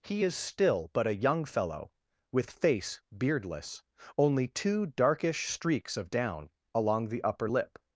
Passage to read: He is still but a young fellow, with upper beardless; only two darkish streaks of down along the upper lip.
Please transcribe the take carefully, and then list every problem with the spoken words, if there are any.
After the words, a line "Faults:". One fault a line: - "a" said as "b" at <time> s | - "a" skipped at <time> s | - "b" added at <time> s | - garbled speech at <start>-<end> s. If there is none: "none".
He is still but a young fellow, with face beardless; only two darkish streaks of down along the upper lip.
Faults:
- "upper" said as "face" at 2.5 s